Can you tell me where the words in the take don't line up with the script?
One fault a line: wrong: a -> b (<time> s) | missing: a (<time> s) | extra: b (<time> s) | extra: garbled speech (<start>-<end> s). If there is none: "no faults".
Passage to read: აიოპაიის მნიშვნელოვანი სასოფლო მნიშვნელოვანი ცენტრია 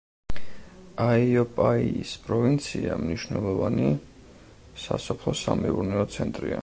extra: პროვინცია (2.3 s)
wrong: მნიშვნელოვანი -> სამეურნეო (5.4 s)